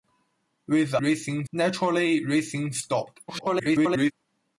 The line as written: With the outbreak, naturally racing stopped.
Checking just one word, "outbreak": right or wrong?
wrong